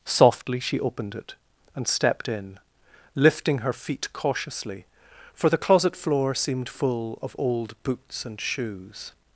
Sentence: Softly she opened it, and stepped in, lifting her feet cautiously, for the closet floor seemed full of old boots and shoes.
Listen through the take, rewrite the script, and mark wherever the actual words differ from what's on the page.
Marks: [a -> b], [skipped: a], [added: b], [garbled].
Softly she opened it, and stepped in, lifting her feet cautiously, for the closet floor seemed full of old boots and shoes.